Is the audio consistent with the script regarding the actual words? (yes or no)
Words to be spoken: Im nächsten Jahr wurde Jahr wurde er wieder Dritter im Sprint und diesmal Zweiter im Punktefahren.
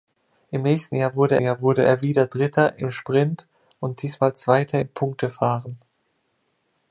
yes